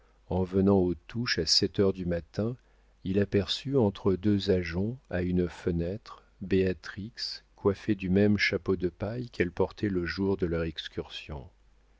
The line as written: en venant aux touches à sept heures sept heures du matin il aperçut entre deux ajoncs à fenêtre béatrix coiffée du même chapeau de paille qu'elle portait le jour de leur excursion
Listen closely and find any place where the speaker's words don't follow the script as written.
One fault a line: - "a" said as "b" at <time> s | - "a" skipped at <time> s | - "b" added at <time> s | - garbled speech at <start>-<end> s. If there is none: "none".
- "sept heures" skipped at 1.9 s
- "une" added at 5.2 s